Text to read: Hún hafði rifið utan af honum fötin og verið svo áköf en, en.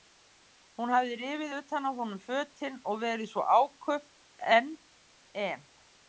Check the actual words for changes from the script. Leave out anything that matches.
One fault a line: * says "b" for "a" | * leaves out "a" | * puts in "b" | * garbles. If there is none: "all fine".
all fine